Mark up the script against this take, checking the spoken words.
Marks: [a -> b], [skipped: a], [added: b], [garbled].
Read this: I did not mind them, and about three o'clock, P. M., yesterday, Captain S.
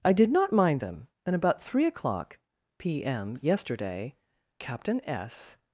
I did not mind them, and about three o'clock, P. M., yesterday, Captain S.